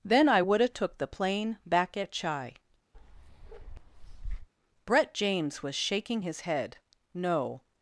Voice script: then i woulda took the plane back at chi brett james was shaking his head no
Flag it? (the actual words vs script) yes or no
no